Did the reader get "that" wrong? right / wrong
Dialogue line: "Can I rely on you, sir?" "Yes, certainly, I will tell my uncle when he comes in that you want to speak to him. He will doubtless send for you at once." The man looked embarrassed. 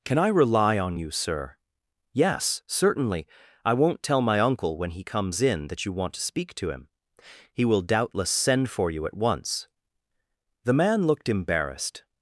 right